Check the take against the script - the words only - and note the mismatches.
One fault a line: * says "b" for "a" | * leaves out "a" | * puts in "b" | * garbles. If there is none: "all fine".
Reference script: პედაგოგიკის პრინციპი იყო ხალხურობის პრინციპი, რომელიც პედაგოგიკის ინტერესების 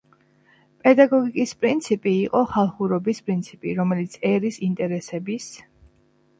* says "ერის" for "პედაგოგიკის"